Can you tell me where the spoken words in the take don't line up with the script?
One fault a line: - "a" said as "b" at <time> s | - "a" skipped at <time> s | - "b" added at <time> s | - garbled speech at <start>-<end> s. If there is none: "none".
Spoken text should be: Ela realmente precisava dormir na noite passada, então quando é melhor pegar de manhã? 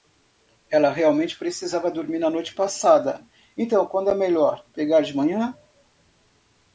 none